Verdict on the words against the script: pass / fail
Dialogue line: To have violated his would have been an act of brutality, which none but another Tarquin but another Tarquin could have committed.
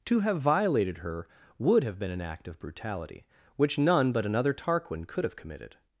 fail